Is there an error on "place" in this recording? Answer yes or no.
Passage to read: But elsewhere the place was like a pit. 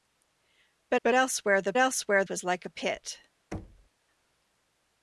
yes